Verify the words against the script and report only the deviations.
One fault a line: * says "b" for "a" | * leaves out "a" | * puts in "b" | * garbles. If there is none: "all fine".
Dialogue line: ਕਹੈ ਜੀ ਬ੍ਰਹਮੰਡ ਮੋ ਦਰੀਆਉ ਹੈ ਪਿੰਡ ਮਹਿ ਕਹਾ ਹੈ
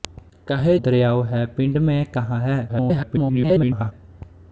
* leaves out "ਜੀ ਬ੍ਰਹਮੰਡ ਮੋ"
* garbles